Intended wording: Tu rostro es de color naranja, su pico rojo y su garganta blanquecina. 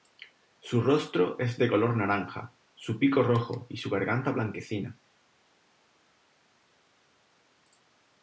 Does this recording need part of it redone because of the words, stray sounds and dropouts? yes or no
yes